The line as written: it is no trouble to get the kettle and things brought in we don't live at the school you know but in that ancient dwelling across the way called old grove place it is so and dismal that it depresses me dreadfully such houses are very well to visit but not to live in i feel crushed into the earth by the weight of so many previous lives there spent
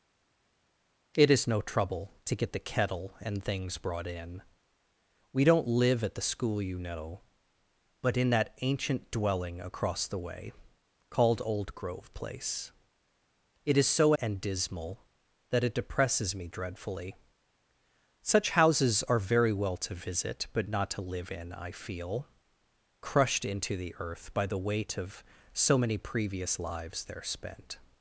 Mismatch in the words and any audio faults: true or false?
false